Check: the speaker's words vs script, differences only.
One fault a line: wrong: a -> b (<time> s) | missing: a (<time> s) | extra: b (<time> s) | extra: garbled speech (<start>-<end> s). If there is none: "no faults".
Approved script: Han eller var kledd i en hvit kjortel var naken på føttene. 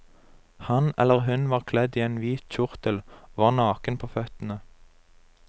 extra: hun (1.3 s)
extra: og (3.2 s)